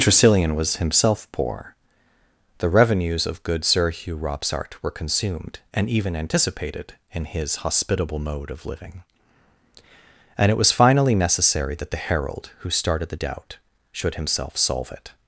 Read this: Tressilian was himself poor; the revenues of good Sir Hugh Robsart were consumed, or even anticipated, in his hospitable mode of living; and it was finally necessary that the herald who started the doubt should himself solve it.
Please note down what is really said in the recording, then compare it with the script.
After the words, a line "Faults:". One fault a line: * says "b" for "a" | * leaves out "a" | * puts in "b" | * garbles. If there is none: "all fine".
Tressilian was himself poor; the revenues of good Sir Hugh Robsart were consumed, and even anticipated, in his hospitable mode of living; and it was finally necessary that the herald who started the doubt should himself solve it.
Faults:
* says "and" for "or"